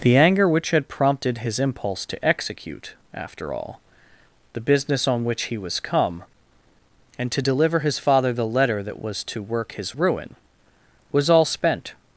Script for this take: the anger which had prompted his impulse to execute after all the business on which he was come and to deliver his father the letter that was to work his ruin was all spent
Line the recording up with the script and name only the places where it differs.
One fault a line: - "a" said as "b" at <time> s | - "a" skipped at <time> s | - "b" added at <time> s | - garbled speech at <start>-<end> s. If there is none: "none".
none